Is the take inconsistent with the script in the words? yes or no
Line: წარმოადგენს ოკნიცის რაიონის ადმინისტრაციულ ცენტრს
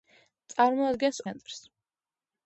yes